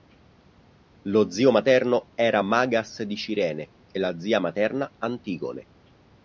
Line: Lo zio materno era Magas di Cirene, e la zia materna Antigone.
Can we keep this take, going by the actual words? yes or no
yes